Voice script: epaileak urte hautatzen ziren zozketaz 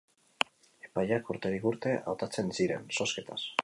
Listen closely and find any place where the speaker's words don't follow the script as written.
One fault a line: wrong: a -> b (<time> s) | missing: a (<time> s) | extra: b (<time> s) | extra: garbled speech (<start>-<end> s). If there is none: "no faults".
extra: urterik (1.4 s)